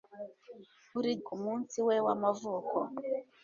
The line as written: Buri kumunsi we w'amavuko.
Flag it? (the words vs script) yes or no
no